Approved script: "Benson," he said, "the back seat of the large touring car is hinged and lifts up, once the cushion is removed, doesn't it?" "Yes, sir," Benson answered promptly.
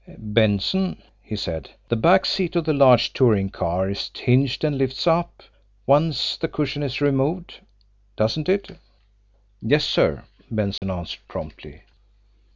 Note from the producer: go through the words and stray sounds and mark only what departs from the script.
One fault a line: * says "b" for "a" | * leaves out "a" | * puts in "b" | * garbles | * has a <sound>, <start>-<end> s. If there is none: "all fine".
* has a dropout, 10.8-10.8 s